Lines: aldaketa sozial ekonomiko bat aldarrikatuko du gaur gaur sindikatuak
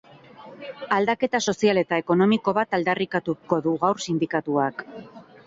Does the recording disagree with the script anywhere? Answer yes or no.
yes